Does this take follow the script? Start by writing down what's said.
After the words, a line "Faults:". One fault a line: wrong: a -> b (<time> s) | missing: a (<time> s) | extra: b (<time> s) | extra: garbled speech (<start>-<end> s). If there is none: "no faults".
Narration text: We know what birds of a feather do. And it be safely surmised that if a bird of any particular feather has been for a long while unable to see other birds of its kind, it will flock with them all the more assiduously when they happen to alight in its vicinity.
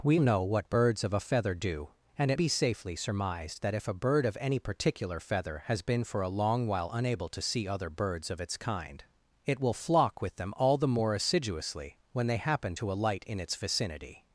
We know what birds of a feather do. And it be safely surmised that if a bird of any particular feather has been for a long while unable to see other birds of its kind, it will flock with them all the more assiduously when they happen to alight in its vicinity.
Faults:
no faults